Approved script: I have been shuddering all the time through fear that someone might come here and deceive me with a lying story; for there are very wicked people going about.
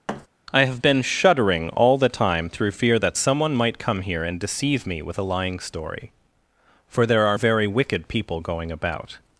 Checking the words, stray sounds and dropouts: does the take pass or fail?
fail